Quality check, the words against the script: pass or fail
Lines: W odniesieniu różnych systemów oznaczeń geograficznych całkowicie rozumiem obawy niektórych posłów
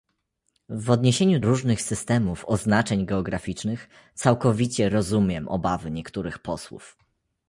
pass